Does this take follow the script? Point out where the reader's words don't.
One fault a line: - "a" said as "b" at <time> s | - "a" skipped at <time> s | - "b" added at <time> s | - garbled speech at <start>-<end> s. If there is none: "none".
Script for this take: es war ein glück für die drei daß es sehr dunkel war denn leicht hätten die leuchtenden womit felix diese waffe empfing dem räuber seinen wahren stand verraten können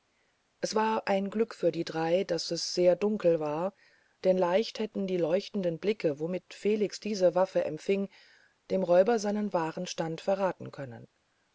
- "blicke" added at 5.8 s